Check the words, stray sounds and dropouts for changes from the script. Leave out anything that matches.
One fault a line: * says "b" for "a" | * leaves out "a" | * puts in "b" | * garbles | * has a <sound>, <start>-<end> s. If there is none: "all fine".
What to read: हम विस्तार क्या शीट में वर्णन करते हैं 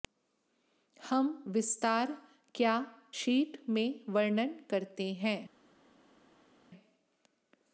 all fine